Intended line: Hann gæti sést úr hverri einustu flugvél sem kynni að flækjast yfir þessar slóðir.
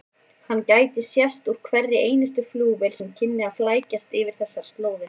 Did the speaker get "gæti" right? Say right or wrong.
right